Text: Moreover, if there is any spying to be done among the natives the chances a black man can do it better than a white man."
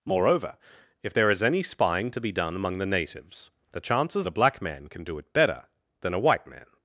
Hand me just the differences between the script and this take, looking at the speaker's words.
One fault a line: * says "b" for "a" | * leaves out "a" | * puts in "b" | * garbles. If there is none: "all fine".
all fine